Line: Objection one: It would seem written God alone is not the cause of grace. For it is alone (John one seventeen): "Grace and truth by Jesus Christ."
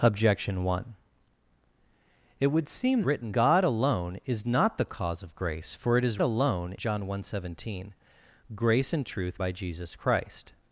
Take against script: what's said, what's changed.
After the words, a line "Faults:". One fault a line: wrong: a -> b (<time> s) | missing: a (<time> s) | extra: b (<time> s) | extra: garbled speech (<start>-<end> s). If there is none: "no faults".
Objection one: It would seem written God alone is not the cause of grace. For it is alone (John one seventeen): "Grace and truth by Jesus Christ."
Faults:
no faults